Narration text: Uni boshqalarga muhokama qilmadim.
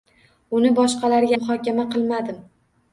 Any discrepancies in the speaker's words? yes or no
no